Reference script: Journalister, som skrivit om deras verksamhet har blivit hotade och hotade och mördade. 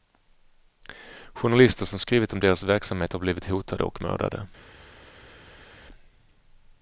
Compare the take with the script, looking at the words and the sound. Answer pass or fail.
fail